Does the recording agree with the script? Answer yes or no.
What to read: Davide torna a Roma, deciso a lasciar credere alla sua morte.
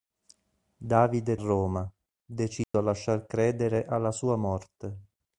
no